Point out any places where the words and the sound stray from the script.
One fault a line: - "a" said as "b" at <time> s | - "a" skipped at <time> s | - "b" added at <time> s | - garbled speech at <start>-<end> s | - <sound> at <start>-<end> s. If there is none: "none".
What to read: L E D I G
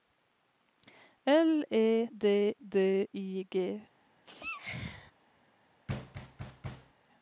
- "D" added at 2.6 s
- sneeze at 4.2-5.1 s
- thud at 5.9-6.9 s